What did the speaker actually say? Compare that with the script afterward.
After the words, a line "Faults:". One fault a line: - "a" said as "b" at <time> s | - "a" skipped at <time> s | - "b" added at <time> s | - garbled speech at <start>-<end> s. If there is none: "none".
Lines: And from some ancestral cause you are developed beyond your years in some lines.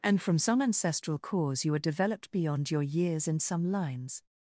And from some ancestral cause you are developed beyond your years in some lines.
Faults:
none